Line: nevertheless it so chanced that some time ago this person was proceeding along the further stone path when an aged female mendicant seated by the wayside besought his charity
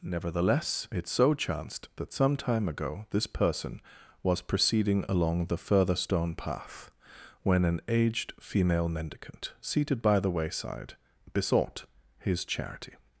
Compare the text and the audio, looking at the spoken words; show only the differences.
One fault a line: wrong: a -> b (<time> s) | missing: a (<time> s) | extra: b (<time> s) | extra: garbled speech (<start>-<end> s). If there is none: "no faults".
no faults